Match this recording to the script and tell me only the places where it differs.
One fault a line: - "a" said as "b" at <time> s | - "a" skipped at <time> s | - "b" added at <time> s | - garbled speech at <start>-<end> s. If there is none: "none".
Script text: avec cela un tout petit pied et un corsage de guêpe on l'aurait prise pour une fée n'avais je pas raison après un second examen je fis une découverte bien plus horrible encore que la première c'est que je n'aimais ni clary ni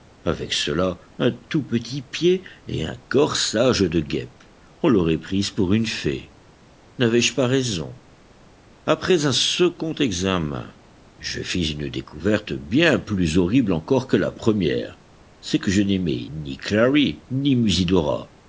none